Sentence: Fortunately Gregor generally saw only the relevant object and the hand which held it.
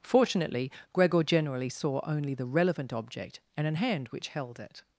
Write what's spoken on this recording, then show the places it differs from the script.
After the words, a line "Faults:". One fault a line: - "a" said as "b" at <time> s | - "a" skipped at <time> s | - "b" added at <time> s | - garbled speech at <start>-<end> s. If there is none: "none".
Fortunately Gregor generally saw only the relevant object and an hand which held it.
Faults:
- "the" said as "an" at 3.7 s